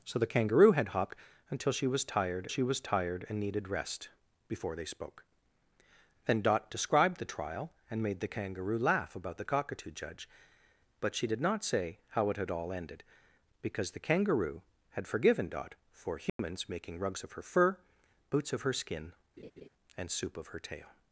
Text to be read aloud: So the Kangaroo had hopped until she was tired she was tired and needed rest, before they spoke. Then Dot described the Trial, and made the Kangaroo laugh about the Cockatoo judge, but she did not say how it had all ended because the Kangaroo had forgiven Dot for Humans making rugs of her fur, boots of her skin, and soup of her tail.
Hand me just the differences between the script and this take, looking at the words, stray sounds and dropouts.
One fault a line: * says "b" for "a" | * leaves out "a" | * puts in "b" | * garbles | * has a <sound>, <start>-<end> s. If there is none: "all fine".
* has a dropout, 16.3-16.4 s
* has a laugh, 19.4-19.7 s